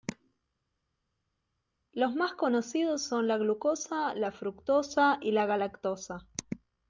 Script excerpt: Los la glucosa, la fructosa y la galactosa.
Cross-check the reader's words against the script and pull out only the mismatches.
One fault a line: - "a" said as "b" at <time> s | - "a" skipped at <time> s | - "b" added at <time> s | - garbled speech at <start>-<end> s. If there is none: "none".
- "más conocidos son" added at 2.2 s